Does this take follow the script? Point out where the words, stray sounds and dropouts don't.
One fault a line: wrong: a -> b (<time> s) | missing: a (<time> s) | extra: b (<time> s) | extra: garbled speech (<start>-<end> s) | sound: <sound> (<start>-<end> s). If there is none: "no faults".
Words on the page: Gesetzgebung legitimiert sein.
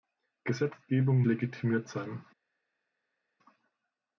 no faults